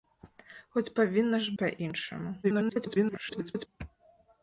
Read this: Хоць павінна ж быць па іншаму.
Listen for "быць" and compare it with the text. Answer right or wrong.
wrong